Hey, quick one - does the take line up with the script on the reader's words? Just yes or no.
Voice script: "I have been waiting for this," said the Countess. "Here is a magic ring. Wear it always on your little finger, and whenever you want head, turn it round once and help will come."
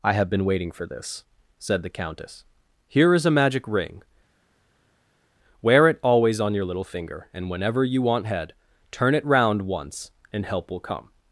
yes